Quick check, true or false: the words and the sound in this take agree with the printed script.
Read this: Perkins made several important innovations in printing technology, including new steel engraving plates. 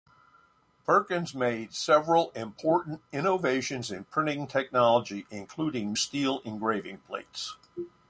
false